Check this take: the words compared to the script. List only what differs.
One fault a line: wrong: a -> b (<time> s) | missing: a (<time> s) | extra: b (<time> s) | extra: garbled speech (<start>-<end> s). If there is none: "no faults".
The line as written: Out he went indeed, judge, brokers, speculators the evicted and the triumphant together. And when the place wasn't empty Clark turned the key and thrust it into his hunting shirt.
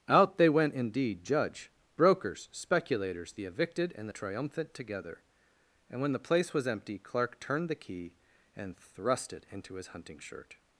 wrong: he -> they (0.4 s)
wrong: wasn't -> was (6.5 s)